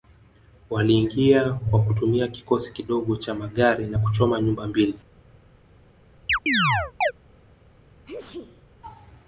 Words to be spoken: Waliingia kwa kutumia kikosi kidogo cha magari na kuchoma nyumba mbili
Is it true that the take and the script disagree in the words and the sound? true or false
true